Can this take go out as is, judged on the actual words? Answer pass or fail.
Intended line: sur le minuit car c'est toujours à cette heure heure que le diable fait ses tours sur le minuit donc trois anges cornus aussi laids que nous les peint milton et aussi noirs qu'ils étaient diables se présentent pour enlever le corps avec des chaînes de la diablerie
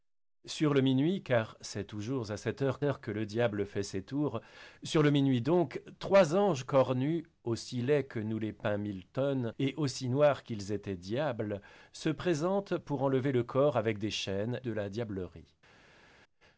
pass